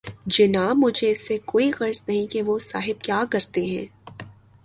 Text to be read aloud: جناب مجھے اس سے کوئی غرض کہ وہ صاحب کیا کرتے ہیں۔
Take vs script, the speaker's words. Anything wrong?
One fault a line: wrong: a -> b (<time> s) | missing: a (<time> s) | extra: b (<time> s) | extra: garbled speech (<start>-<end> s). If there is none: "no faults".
extra: نہیں (2.1 s)